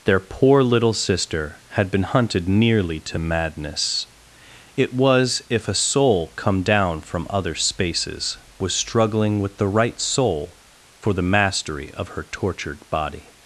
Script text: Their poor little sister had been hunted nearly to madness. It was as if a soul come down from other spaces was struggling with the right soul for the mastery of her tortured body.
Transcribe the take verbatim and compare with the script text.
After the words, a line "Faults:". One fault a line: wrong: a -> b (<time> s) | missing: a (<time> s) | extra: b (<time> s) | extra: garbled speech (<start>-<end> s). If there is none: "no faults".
Their poor little sister had been hunted nearly to madness. It was if a soul come down from other spaces was struggling with the right soul for the mastery of her tortured body.
Faults:
missing: as (5.4 s)